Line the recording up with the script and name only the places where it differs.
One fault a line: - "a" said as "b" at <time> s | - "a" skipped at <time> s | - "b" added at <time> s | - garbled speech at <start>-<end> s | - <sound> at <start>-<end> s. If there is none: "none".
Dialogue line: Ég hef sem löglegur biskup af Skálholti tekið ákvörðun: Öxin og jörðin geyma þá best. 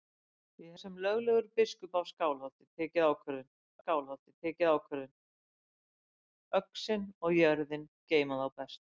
- "hef" skipped at 0.8 s
- "Skálholti tekið ákvörðun" added at 3.8 s